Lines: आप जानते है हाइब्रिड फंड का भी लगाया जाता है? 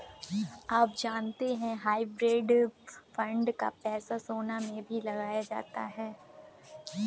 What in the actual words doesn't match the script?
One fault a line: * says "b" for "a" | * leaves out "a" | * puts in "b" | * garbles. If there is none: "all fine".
* puts in "पैसा सोना में"